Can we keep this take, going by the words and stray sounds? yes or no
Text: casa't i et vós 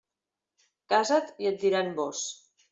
no